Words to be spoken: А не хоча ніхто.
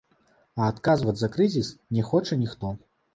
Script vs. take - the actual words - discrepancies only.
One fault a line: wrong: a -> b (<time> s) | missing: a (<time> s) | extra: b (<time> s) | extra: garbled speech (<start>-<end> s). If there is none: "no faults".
extra: адказваць за крызіс (0.7 s)